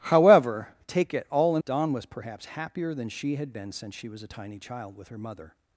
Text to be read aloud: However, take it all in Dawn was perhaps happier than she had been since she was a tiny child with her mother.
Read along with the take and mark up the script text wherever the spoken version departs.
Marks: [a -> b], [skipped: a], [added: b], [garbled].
However, take it all in Dawn was perhaps happier than she had been since she was a tiny child with her mother.